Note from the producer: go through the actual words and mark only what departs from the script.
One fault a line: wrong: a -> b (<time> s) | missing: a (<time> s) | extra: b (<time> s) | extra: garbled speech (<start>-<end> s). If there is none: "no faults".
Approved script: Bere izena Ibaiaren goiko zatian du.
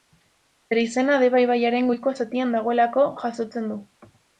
extra: Deba (1.2 s)
extra: dagoelako jasotzen (2.6 s)